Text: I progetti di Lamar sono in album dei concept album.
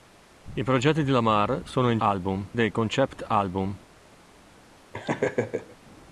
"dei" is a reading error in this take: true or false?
false